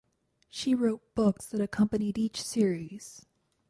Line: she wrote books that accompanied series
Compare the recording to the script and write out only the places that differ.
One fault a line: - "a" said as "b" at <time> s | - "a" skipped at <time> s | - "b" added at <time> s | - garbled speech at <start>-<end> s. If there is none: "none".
- "each" added at 2.2 s